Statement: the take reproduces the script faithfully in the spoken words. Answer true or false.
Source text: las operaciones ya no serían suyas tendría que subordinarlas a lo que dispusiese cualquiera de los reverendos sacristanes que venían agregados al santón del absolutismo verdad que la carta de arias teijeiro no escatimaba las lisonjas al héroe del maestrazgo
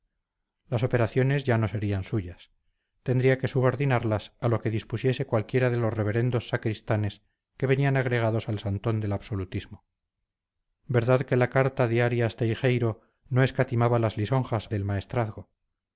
false